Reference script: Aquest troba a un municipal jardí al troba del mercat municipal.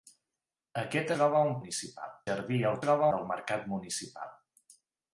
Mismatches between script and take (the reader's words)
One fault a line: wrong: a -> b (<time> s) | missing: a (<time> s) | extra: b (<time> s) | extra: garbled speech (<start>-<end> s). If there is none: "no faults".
no faults